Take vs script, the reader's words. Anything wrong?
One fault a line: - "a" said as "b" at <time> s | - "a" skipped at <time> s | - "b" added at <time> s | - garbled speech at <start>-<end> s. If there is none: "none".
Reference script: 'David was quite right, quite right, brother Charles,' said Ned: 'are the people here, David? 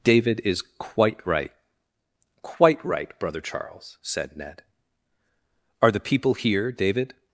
- "was" said as "is" at 0.4 s